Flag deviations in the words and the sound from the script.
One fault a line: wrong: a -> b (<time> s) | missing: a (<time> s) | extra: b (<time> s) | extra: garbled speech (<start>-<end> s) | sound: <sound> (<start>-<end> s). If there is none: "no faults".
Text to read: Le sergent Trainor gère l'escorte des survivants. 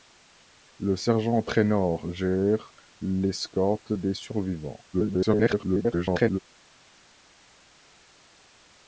extra: garbled speech (4.9-6.4 s)